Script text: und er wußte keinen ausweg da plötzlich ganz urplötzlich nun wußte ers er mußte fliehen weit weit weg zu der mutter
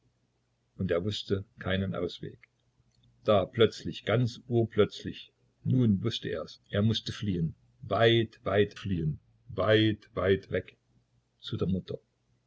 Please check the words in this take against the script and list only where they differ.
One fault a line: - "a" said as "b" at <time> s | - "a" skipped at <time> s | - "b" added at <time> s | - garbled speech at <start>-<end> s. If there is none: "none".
- "fliehen weit weit" added at 8.7 s